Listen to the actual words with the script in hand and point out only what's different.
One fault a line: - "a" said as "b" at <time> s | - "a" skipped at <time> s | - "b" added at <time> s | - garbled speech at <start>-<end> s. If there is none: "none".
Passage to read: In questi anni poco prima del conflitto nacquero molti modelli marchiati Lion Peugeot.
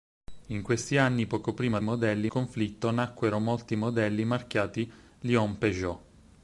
- "del" said as "modelli" at 1.8 s